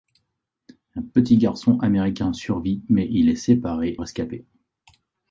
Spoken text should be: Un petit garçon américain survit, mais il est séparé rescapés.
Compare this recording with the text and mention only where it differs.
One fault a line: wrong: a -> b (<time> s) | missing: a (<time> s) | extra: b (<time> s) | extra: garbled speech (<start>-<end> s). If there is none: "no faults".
no faults